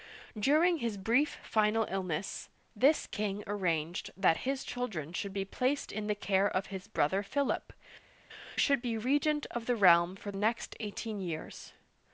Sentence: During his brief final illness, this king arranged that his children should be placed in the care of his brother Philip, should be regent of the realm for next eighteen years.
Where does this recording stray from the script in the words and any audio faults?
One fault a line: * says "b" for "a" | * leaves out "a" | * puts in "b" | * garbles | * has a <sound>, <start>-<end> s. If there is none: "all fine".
all fine